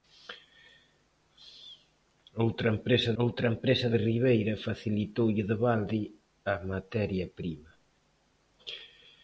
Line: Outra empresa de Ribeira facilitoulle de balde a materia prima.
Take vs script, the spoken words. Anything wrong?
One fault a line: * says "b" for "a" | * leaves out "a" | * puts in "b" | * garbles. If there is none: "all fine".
* puts in "outra empresa"